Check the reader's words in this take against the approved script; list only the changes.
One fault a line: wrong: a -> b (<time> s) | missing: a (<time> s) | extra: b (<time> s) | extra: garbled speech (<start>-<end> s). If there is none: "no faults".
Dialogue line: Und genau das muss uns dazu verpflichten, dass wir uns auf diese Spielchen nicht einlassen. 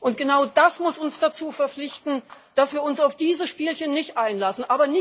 no faults